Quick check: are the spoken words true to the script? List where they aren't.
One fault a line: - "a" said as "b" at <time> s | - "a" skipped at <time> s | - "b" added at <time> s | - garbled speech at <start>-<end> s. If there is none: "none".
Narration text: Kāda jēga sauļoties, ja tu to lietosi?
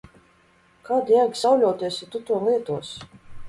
none